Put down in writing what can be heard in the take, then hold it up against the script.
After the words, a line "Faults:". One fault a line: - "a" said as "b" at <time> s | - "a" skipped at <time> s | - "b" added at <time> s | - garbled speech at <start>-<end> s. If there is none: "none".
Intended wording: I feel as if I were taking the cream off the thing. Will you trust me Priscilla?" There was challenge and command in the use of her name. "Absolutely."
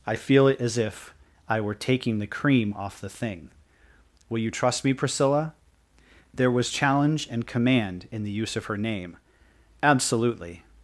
I feel it as if I were taking the cream off the thing. Will you trust me Priscilla?" There was challenge and command in the use of her name. "Absolutely."
Faults:
- "it" added at 0.5 s